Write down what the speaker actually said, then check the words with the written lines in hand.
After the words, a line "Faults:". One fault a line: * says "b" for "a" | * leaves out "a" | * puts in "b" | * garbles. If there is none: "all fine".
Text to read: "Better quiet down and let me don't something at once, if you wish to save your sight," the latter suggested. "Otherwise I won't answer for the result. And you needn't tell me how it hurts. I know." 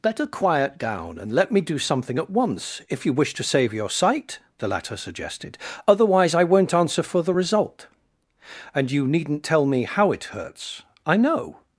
"Better quiet down and let me do something at once, if you wish to save your sight," the latter suggested. "Otherwise I won't answer for the result. And you needn't tell me how it hurts. I know."
Faults:
* says "do" for "don't"